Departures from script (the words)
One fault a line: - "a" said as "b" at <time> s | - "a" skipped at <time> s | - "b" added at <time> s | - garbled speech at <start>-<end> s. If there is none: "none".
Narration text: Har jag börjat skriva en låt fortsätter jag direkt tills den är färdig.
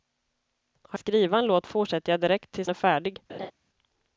- "jag börjat" skipped at 1.0 s
- "den" skipped at 2.7 s